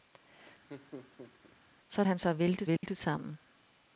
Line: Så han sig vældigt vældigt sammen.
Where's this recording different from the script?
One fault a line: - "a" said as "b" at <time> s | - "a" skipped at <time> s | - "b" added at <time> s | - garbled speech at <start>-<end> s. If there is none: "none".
none